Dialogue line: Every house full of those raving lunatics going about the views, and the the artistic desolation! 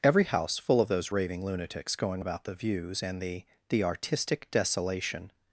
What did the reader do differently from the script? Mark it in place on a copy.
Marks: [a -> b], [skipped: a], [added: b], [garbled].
Every house full of those raving lunatics going about the views, and the the artistic desolation!